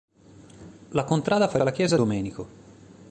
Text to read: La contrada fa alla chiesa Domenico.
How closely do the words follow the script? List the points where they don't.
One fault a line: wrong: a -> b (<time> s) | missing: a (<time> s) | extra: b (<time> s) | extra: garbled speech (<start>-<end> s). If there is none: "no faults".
no faults